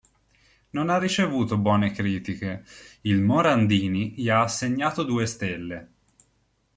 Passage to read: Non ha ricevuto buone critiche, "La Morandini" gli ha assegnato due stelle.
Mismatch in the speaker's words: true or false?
true